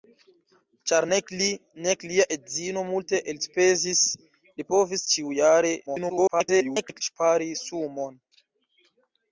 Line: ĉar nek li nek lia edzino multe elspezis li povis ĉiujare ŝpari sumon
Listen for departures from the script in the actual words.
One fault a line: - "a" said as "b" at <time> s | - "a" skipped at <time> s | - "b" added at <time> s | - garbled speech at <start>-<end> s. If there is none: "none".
- garbled speech at 5.9-7.0 s